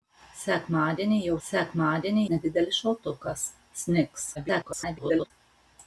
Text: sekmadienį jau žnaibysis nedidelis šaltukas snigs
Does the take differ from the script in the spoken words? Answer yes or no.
yes